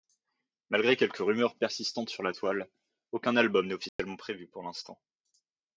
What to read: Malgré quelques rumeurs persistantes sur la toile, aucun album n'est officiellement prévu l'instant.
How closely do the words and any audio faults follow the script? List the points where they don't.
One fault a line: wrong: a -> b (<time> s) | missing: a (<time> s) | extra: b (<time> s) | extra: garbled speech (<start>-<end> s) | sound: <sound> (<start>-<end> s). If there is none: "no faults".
sound: dropout (3.9-4.0 s)
extra: pour (4.5 s)